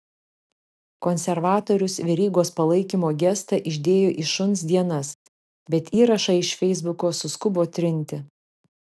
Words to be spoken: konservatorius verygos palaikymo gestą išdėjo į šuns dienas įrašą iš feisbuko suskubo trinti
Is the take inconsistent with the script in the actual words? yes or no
yes